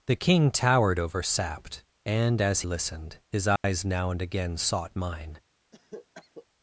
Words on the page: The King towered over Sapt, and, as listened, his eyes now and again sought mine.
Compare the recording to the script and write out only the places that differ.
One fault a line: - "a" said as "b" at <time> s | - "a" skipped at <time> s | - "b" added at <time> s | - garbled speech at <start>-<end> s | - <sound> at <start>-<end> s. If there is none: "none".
- dropout at 3.6-3.6 s
- cough at 5.7-6.5 s